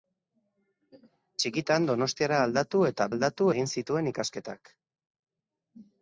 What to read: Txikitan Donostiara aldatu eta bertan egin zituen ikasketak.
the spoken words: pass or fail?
fail